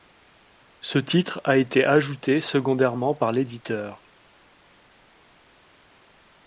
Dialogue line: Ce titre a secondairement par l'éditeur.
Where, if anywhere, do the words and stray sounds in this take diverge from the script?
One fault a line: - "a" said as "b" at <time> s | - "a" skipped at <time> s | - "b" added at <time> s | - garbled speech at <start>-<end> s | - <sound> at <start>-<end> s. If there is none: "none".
- "été ajouté" added at 1.6 s